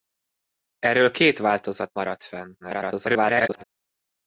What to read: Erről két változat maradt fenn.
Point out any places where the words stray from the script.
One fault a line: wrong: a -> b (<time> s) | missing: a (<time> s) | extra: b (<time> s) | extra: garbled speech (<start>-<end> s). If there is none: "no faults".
extra: garbled speech (2.6-3.6 s)